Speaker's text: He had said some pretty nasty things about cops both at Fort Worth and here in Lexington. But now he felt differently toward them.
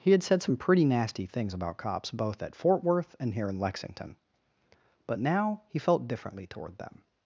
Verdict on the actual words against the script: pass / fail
pass